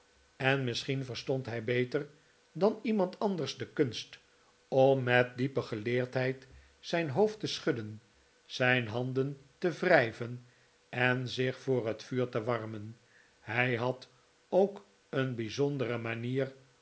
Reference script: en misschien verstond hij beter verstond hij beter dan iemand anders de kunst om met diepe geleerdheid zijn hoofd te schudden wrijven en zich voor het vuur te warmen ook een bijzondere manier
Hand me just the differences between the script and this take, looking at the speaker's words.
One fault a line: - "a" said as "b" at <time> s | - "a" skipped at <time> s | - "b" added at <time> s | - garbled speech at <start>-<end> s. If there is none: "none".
- "verstond hij beter" skipped at 2.1 s
- "zijn handen te" added at 8.4 s
- "hij had" added at 13.4 s